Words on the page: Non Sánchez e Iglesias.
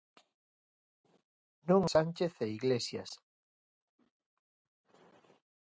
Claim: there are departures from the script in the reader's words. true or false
false